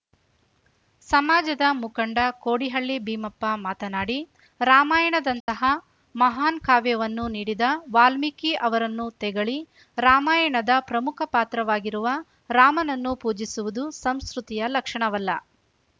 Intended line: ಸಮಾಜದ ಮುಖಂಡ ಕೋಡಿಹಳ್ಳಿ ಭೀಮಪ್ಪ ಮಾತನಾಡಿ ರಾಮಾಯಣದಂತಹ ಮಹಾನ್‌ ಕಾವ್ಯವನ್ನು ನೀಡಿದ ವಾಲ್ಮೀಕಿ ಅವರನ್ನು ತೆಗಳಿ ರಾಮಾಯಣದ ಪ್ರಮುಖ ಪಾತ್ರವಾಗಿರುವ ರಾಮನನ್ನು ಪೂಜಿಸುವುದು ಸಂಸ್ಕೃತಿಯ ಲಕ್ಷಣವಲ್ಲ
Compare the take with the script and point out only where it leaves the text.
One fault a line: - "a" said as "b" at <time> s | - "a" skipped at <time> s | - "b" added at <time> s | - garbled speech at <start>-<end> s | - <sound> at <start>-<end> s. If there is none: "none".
- dropout at 5.4-5.5 s